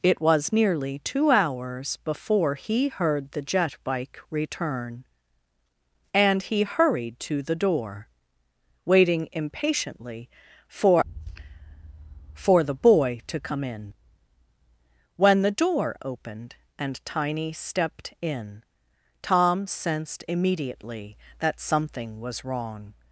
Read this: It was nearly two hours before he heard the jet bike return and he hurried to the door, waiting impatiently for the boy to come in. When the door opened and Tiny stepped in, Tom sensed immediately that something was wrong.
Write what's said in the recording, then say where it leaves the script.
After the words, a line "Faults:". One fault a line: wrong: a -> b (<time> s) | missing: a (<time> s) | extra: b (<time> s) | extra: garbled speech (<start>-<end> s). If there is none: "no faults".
It was nearly two hours before he heard the jet bike return and he hurried to the door, waiting impatiently for for the boy to come in. When the door opened and Tiny stepped in, Tom sensed immediately that something was wrong.
Faults:
extra: for (12.3 s)